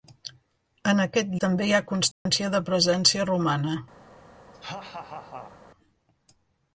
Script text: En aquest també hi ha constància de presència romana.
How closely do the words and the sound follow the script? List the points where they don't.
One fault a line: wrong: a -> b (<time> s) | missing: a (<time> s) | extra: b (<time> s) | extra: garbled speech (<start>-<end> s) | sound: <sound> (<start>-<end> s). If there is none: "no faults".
sound: dropout (2.1-2.3 s)
sound: laugh (4.5-5.6 s)